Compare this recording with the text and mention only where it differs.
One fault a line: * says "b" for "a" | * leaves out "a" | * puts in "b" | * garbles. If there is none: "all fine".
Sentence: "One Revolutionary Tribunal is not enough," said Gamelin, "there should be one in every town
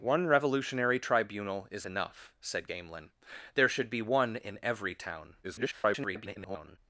* leaves out "not"
* garbles